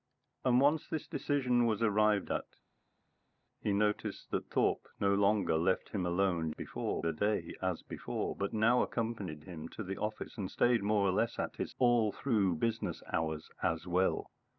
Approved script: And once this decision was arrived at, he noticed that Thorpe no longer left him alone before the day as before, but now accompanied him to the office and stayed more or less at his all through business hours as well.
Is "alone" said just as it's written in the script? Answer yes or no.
yes